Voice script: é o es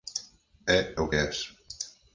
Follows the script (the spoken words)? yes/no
yes